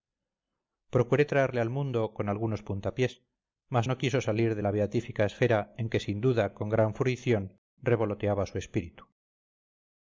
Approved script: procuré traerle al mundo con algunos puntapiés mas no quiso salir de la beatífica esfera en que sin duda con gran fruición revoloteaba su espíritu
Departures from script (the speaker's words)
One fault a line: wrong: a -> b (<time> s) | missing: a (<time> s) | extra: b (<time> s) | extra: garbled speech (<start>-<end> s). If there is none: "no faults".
no faults